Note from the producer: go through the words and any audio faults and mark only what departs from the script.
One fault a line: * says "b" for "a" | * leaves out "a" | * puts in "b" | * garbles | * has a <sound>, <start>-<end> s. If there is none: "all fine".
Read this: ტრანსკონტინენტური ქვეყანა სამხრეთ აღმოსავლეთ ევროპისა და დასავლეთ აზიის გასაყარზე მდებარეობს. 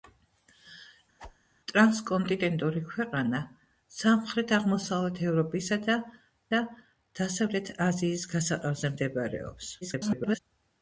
* has a whoosh, 1.2-1.4 s
* puts in "და"
* garbles